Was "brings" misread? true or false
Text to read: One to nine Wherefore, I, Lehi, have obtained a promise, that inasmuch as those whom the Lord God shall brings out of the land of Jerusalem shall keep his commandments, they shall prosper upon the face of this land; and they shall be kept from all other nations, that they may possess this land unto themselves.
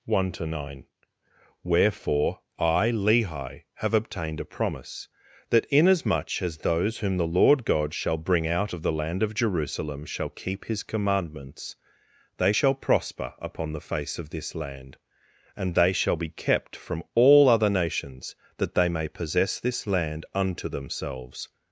true